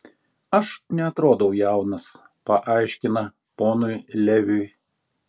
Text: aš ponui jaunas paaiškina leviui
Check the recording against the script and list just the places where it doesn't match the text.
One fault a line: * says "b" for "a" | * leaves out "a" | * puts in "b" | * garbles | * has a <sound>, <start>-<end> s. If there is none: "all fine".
* says "neatrodau" for "ponui"
* puts in "ponui"